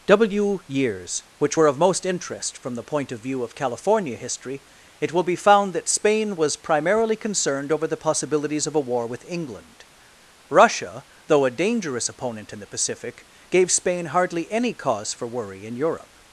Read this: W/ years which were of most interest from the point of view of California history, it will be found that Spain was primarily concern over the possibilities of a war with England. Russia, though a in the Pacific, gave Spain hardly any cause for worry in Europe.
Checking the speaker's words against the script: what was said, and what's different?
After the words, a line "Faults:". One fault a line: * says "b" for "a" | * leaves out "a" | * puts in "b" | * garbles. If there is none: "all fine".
W/ years which were of most interest from the point of view of California history, it will be found that Spain was primarily concerned over the possibilities of a war with England. Russia, though a dangerous opponent in the Pacific, gave Spain hardly any cause for worry in Europe.
Faults:
* says "concerned" for "concern"
* puts in "dangerous opponent"